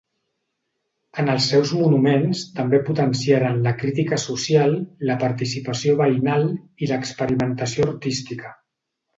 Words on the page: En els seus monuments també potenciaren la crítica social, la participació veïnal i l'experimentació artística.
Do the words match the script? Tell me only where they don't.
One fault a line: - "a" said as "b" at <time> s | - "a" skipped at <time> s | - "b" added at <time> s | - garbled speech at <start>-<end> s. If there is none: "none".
none